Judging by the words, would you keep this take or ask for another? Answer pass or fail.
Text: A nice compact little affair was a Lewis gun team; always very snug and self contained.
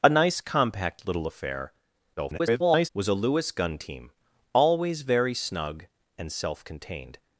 fail